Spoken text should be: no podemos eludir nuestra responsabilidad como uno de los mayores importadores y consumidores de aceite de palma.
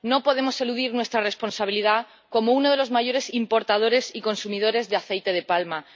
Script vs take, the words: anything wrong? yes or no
no